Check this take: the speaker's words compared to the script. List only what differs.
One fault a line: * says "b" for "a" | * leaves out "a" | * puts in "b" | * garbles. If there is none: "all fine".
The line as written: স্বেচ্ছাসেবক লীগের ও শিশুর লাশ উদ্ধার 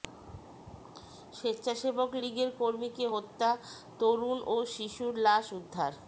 * puts in "কর্মীকে হত্যা তরুণ"